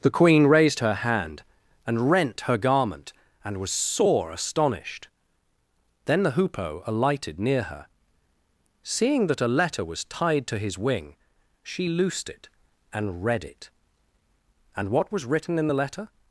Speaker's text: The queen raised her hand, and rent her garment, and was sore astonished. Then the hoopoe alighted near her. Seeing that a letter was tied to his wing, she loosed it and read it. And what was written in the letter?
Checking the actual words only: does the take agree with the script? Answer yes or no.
yes